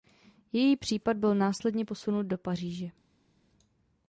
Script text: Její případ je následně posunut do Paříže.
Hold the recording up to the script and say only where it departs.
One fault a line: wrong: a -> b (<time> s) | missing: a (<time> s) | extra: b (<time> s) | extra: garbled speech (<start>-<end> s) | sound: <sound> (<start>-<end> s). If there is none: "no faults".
wrong: je -> byl (1.2 s)